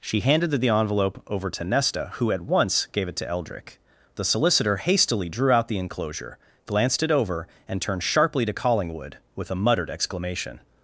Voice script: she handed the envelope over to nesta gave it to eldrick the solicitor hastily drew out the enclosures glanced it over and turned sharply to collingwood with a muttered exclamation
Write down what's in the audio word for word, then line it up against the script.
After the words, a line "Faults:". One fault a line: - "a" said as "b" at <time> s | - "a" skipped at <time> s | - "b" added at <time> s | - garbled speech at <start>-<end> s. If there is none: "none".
she handed the envelope over to nesta who at once gave it to eldrick the solicitor hastily drew out the enclosure glanced it over and turned sharply to collingwood with a muttered exclamation
Faults:
- "who at once" added at 2.1 s
- "enclosures" said as "enclosure" at 5.8 s